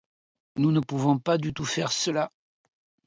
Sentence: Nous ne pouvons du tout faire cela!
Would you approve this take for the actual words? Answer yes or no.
no